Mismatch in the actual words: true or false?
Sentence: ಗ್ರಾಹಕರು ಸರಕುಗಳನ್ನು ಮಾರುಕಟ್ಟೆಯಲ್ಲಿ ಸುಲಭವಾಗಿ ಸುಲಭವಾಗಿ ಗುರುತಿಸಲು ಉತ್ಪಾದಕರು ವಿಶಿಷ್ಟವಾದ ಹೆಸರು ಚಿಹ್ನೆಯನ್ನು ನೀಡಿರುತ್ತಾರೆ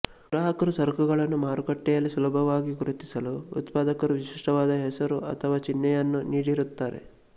true